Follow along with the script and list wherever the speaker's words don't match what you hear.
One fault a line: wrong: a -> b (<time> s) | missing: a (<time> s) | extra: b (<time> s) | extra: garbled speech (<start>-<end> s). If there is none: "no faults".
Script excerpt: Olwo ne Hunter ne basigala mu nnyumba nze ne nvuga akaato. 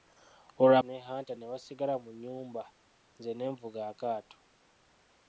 no faults